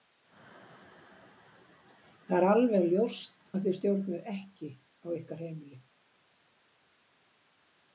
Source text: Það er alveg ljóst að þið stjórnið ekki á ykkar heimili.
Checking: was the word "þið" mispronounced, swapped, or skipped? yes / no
no